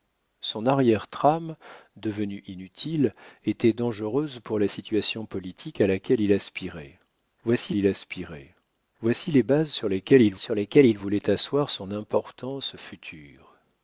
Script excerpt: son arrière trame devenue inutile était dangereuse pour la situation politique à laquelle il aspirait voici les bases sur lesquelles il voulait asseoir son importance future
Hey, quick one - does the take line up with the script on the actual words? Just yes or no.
no